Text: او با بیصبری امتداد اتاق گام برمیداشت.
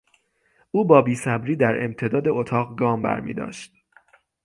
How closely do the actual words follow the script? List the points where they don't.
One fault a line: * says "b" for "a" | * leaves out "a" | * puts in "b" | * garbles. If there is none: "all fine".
* puts in "در"